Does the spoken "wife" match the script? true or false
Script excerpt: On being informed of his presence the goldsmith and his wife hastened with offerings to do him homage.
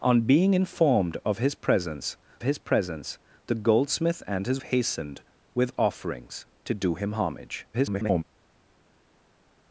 false